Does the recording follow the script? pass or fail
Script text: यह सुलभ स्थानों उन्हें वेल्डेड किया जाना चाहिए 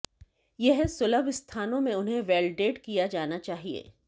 fail